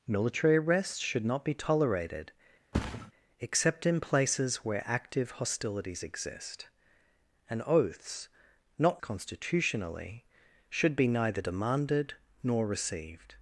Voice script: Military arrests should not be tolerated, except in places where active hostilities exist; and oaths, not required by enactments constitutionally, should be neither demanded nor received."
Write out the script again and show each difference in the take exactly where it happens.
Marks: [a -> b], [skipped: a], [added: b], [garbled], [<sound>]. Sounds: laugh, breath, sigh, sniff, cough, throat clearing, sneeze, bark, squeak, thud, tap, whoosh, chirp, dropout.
Military arrests should not be tolerated, [thud] except in places where active hostilities exist; and oaths, not [skipped: required by enactments] constitutionally, should be neither demanded nor received."